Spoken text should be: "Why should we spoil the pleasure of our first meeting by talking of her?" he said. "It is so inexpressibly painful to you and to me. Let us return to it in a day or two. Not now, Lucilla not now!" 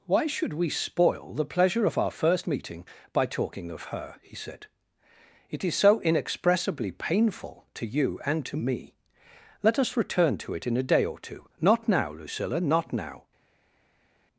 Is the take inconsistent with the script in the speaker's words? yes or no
no